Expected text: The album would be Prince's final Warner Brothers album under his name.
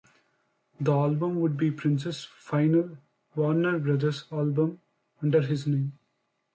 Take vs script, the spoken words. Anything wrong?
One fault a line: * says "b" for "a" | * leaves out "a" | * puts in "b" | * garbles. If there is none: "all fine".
all fine